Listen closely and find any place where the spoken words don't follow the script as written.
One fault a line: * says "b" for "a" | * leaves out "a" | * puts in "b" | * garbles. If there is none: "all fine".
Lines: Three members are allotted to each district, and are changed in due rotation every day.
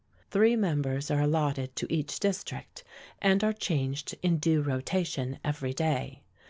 all fine